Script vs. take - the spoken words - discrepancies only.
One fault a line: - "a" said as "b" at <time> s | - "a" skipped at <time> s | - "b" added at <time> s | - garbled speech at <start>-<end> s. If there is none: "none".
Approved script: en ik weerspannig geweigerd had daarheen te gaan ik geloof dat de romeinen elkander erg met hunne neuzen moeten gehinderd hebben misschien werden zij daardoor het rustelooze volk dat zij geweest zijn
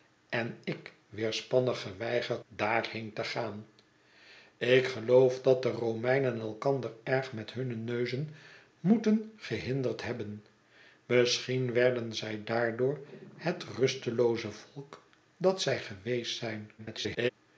- "had" skipped at 2.5 s
- garbled speech at 16.8-17.3 s